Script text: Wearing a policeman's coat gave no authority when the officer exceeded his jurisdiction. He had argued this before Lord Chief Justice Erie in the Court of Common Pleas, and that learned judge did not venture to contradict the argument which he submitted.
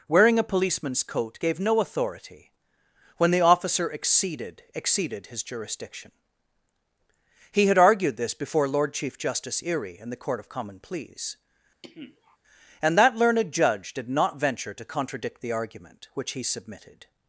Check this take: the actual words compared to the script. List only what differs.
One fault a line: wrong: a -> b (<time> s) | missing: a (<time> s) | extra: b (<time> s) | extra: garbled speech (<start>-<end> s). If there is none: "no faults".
extra: exceeded (4.7 s)